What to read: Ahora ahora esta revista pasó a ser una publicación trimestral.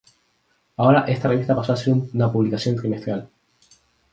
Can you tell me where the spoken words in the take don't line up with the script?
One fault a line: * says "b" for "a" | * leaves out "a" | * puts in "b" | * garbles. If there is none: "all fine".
* leaves out "ahora"